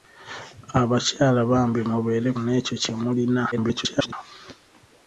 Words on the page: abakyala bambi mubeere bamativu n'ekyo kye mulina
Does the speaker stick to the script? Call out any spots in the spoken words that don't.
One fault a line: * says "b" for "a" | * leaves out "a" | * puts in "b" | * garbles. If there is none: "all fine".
* leaves out "bamativu"
* garbles